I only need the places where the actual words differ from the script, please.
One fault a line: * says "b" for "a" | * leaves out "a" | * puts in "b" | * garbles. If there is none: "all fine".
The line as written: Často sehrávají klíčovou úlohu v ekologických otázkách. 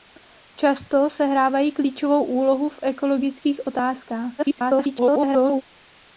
* garbles